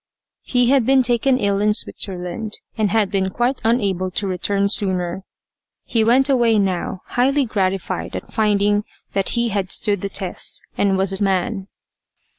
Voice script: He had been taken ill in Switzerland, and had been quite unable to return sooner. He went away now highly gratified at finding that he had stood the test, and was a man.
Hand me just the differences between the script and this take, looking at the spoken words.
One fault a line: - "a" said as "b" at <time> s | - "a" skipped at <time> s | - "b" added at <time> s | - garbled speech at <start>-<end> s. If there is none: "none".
none